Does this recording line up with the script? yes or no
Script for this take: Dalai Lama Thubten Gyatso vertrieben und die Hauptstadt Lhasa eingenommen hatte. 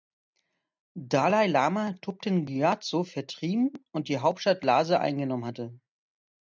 yes